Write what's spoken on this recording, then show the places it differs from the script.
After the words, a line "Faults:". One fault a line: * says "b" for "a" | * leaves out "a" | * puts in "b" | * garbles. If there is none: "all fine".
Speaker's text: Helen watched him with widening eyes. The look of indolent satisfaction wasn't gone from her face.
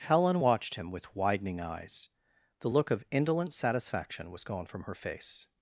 Helen watched him with widening eyes. The look of indolent satisfaction was gone from her face.
Faults:
* says "was" for "wasn't"